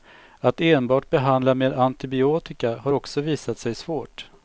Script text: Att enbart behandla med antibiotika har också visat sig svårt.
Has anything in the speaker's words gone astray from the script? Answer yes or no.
no